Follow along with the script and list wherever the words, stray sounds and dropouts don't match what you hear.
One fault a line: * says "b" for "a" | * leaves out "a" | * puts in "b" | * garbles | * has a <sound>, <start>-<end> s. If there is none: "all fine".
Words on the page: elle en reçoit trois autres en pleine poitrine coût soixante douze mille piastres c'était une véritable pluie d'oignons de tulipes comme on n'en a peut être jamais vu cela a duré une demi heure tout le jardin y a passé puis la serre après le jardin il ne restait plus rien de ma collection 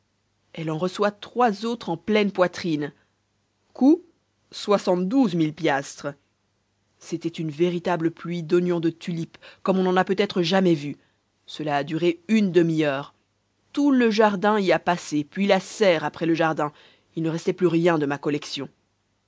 all fine